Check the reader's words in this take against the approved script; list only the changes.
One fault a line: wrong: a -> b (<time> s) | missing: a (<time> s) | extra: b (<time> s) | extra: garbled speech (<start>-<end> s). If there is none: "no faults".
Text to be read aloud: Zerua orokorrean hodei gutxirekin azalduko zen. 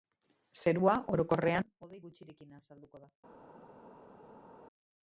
wrong: zen -> da (3.1 s)